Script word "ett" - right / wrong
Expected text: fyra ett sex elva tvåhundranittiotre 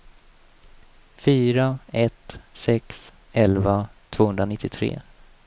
right